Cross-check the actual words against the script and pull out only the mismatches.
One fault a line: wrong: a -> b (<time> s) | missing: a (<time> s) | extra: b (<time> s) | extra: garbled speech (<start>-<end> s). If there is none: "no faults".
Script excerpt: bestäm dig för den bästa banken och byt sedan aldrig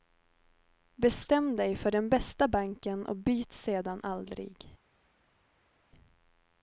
no faults